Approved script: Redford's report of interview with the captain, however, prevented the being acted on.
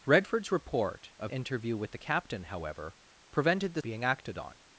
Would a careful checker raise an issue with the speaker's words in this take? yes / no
no